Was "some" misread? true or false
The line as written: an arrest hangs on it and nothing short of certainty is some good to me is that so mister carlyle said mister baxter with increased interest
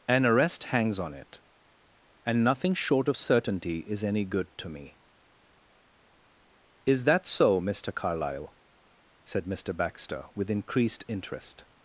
true